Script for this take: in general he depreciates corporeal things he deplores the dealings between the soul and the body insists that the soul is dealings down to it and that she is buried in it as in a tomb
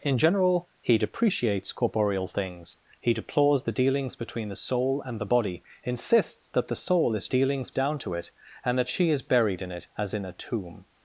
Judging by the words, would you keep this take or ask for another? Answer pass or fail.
pass